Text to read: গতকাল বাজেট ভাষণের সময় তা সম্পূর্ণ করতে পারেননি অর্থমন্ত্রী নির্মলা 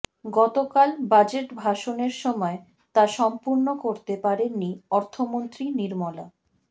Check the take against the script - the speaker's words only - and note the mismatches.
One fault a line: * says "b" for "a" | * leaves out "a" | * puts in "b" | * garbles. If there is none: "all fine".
all fine